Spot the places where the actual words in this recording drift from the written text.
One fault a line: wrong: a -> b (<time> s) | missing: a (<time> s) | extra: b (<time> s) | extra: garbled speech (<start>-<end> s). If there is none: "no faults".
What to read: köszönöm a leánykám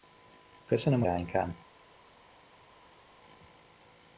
no faults